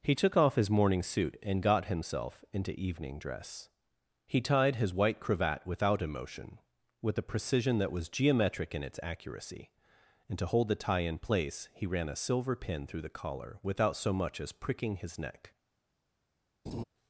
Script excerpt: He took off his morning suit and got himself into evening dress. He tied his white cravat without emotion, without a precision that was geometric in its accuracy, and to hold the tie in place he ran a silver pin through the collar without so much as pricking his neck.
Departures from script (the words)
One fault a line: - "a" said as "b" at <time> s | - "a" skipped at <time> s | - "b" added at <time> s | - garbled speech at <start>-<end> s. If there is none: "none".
- "without" said as "with" at 7.0 s